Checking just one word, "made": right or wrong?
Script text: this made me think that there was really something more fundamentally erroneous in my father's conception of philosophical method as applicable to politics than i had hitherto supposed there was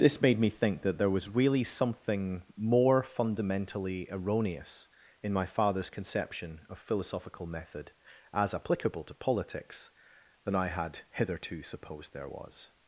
right